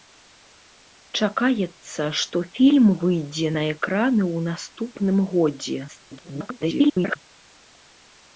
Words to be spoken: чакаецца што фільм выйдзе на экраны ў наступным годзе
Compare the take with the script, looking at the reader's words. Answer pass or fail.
fail